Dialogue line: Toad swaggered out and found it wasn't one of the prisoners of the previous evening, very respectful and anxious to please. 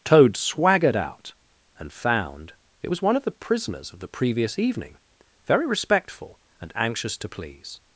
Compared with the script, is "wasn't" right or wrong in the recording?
wrong